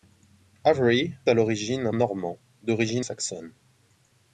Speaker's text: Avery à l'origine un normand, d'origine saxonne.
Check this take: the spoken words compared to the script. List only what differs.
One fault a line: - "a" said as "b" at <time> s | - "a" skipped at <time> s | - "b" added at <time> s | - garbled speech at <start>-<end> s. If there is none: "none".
none